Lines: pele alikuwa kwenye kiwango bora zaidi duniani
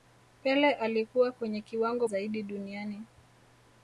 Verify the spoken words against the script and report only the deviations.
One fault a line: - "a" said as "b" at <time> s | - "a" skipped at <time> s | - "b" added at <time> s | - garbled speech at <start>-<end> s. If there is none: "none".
- "bora" skipped at 2.1 s